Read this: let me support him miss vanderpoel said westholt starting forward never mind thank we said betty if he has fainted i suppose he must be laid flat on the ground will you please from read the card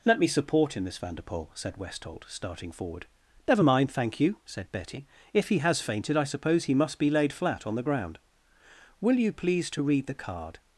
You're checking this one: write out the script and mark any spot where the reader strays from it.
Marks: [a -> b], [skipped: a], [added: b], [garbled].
let me support him miss vanderpoel said westholt starting forward never mind thank [we -> you] said betty if he has fainted i suppose he must be laid flat on the ground will you please [from -> to] read the card